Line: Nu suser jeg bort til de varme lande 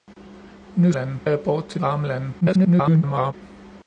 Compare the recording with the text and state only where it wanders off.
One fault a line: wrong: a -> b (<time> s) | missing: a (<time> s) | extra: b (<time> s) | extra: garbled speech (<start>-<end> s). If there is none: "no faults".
wrong: suser -> lande (0.9 s)
missing: de (1.8 s)
extra: garbled speech (2.4-3.3 s)